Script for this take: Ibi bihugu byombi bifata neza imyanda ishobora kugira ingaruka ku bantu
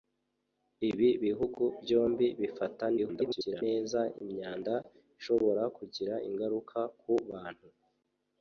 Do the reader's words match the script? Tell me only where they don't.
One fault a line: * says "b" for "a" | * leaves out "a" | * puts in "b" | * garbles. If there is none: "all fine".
* garbles